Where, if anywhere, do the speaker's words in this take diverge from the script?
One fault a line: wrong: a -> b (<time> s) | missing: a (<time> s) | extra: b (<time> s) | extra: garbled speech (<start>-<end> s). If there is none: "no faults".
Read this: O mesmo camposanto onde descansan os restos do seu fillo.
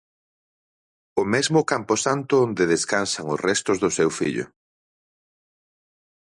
no faults